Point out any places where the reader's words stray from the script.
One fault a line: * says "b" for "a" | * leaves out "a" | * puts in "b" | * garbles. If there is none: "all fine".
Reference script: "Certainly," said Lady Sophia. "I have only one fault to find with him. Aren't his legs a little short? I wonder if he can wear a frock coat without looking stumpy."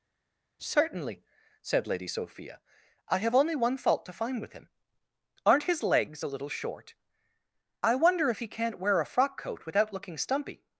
* says "can't" for "can"